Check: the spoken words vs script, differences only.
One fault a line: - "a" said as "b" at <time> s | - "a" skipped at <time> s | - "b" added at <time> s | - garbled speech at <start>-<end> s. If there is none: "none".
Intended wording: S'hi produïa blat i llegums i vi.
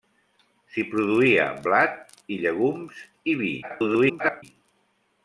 - garbled speech at 3.6-4.4 s